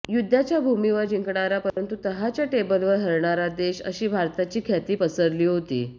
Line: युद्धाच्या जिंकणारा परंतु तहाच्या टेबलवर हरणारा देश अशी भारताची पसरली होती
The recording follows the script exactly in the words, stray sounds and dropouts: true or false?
false